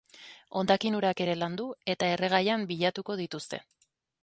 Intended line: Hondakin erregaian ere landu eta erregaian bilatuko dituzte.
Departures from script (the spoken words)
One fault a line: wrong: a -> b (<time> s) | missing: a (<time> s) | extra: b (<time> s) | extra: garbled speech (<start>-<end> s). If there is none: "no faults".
wrong: erregaian -> urak (1.0 s)